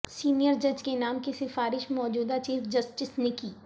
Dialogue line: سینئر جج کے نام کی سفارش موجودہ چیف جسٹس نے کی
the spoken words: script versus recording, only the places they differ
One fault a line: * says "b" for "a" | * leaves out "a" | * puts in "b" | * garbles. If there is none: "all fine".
all fine